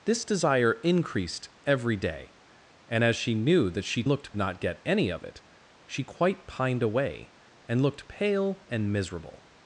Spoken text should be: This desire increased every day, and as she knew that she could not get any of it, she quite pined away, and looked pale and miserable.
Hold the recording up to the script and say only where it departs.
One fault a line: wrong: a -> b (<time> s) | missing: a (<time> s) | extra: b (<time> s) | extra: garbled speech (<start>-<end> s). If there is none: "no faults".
wrong: could -> looked (4.1 s)